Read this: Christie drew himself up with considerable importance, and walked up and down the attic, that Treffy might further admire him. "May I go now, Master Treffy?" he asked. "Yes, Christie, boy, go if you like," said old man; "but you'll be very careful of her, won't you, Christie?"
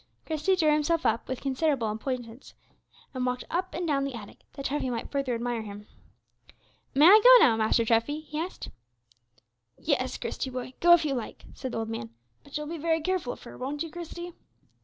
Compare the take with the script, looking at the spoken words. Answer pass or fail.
pass